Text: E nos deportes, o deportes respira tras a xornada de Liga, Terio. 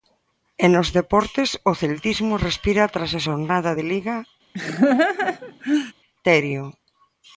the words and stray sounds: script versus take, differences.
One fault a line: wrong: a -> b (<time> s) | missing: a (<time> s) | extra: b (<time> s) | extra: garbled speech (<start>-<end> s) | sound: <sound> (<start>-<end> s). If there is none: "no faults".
wrong: deportes -> celtismo (1.8 s)
sound: laugh (4.5-5.9 s)